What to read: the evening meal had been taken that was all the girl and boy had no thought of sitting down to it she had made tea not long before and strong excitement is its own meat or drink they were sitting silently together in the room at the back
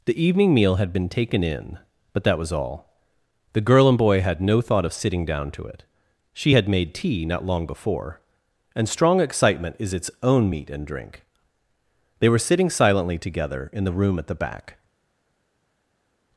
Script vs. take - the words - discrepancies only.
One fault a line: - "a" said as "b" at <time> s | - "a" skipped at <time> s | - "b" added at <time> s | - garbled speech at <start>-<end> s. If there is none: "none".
- "in but" added at 1.4 s
- "or" said as "and" at 10.7 s